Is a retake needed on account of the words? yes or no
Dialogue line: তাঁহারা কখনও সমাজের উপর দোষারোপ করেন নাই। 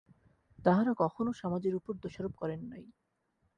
no